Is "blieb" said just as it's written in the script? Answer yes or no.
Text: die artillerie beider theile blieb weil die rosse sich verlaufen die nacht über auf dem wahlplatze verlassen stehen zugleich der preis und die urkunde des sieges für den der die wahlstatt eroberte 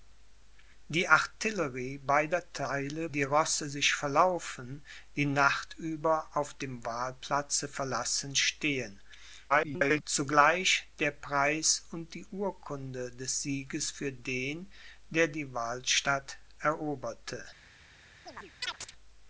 no